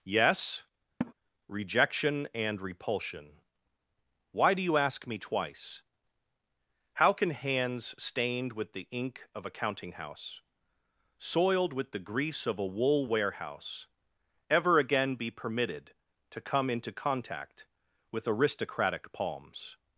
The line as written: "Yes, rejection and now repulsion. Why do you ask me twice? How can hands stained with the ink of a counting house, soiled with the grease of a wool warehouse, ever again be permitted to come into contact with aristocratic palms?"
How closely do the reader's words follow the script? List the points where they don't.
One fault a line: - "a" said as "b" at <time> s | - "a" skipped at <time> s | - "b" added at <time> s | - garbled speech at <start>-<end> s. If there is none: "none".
- "now" skipped at 2.6 s